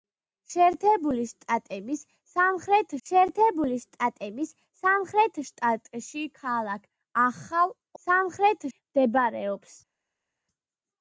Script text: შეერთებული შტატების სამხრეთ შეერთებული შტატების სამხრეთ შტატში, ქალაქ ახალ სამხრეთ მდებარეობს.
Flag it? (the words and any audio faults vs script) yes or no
no